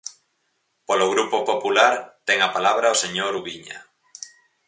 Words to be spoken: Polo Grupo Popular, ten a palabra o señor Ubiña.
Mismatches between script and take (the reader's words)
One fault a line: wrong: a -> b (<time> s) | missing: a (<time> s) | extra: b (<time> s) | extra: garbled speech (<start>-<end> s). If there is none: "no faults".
no faults